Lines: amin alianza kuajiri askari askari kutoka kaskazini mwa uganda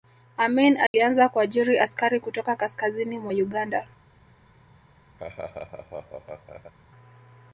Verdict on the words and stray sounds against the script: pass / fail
fail